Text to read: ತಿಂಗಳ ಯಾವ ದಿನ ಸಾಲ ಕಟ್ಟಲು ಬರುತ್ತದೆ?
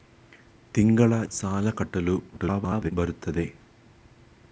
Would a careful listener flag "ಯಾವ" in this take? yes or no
yes